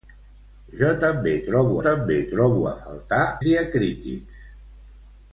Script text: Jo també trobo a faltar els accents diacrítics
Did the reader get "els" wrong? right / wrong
wrong